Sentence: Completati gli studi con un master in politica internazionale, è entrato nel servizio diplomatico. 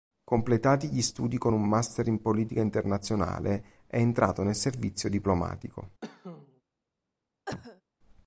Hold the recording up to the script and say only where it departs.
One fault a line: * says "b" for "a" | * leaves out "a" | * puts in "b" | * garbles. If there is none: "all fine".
all fine